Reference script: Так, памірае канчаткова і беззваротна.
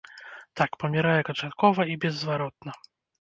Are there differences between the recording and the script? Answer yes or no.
no